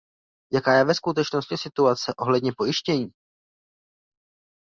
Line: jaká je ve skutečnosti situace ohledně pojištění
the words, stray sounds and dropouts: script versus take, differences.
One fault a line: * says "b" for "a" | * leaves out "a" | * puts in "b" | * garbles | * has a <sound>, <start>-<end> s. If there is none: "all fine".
all fine